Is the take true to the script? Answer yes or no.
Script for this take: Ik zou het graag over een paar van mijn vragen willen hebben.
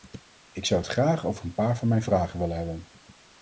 yes